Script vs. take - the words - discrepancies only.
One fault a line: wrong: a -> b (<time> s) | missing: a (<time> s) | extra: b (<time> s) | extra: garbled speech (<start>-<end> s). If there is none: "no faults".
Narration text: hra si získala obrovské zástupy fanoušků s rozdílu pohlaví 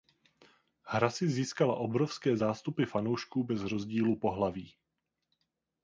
wrong: s -> bez (3.4 s)